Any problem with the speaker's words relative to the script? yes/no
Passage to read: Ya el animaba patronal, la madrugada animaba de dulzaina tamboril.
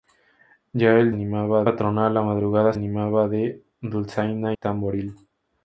no